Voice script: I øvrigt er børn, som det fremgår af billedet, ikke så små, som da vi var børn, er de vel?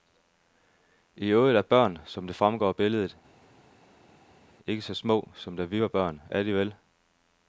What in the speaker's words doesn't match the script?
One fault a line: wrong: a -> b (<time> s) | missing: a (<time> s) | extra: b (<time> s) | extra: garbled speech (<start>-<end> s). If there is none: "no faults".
no faults